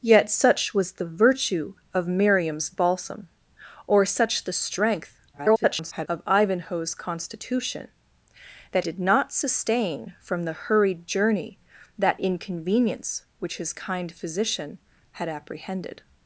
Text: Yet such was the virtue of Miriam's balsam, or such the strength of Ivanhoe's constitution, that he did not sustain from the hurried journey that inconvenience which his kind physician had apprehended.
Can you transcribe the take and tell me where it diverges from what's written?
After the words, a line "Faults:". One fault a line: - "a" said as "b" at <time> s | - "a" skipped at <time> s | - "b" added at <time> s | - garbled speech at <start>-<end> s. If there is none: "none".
Yet such was the virtue of Miriam's balsam, or such the strength [garbled] of Ivanhoe's constitution, that did not sustain from the hurried journey that inconvenience which his kind physician had apprehended.
Faults:
- garbled speech at 5.3-6.1 s
- "he" skipped at 8.8 s